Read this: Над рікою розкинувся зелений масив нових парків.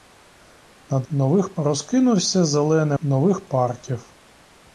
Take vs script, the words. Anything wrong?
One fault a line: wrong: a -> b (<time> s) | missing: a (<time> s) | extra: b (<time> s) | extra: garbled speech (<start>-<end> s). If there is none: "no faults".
wrong: рікою -> нових (1.1 s)
missing: масив (3.0 s)